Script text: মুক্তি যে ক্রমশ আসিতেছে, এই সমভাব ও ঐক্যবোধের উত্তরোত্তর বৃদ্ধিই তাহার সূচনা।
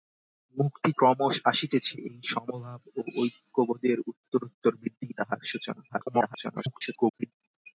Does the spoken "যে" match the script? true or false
false